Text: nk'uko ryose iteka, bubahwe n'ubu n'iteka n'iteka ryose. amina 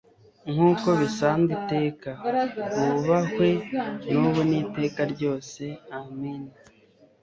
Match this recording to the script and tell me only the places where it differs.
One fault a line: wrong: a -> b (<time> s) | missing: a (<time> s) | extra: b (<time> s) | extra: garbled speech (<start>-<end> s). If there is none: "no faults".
wrong: ryose -> bisanzwe (1.0 s)
missing: n'iteka (5.0 s)